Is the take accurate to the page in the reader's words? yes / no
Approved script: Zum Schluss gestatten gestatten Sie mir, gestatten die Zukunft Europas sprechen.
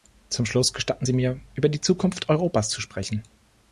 no